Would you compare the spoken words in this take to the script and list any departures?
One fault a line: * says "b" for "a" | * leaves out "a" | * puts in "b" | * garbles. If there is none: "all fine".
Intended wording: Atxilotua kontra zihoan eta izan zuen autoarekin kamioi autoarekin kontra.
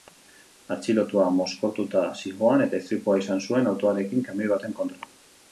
* says "mozkortuta" for "kontra"
* puts in "istripua"
* says "baten" for "autoarekin"